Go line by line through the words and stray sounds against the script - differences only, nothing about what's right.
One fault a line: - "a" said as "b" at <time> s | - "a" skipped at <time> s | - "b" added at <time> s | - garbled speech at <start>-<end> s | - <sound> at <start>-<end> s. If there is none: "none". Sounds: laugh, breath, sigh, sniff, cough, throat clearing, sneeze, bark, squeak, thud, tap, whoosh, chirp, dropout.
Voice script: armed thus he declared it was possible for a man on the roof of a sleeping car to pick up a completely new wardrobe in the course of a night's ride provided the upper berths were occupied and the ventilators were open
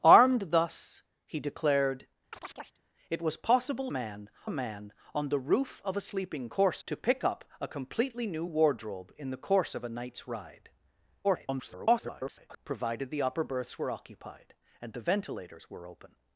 - chirp at 2.3-2.8 s
- "for" said as "man" at 3.9 s
- "car" said as "course" at 6.5 s
- garbled speech at 11.2-12.6 s